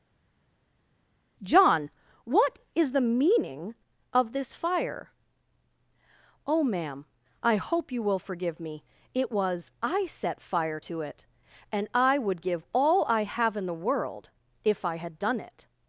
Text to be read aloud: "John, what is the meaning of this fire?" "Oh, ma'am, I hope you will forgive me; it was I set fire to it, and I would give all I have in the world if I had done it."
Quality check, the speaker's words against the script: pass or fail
pass